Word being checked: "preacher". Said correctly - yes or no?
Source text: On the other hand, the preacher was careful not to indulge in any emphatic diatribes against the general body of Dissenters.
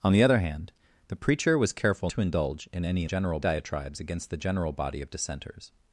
yes